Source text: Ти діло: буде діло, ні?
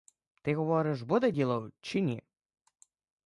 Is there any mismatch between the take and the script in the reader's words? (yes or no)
yes